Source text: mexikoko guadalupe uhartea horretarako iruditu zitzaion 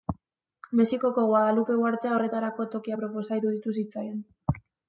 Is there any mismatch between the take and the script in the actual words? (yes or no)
yes